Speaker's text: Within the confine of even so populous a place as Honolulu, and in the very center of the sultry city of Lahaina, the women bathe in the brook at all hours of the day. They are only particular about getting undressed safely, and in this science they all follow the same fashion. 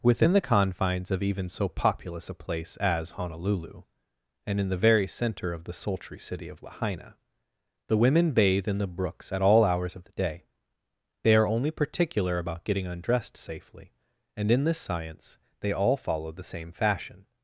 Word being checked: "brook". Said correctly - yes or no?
no